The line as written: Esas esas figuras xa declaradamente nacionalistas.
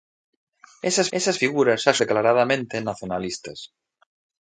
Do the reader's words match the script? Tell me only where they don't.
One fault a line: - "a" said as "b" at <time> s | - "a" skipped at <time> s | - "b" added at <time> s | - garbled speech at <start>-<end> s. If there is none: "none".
none